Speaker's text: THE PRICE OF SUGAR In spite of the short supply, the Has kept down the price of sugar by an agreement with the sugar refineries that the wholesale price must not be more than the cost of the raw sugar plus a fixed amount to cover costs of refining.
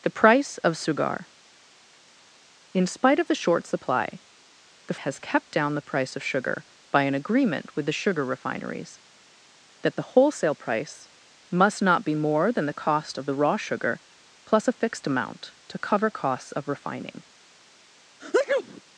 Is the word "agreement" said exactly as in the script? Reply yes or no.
yes